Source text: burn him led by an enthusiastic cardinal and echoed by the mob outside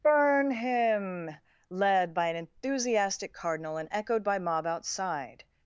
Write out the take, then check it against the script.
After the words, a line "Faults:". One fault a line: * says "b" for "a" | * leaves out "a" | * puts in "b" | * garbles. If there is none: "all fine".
burn him led by an enthusiastic cardinal and echoed by mob outside
Faults:
* leaves out "the"